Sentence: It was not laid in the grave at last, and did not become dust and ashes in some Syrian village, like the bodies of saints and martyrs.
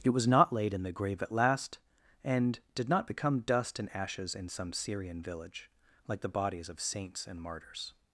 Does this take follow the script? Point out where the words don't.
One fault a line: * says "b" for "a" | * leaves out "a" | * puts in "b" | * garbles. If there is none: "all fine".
all fine